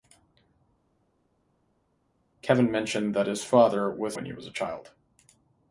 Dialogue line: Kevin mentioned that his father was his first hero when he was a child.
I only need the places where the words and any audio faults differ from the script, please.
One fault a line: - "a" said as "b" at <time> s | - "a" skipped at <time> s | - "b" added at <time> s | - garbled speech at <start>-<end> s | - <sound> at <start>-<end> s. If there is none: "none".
- "his first hero" skipped at 4.1 s